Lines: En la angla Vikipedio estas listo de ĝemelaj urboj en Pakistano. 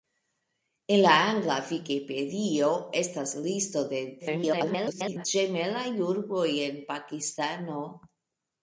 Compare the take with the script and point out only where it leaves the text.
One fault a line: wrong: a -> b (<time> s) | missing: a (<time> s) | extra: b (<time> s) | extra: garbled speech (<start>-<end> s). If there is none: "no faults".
extra: garbled speech (4.2-5.3 s)